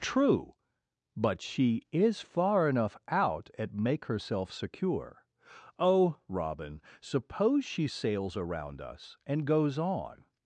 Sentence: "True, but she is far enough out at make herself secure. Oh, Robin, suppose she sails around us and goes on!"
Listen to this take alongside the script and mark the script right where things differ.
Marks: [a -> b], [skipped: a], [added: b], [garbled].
"True, but she is far enough out at make herself secure. Oh, Robin, suppose she sails around us and goes on!"